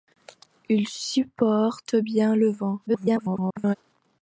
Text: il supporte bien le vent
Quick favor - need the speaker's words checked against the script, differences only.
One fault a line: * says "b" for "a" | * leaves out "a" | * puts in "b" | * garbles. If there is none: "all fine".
* garbles